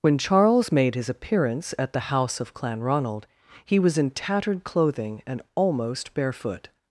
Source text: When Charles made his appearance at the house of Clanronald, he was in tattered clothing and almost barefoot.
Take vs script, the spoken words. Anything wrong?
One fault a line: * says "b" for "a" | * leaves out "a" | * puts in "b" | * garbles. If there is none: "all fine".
all fine